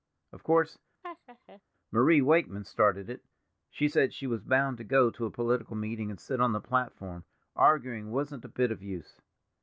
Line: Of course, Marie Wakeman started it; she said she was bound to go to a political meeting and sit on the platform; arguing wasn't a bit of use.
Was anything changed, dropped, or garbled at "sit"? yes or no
no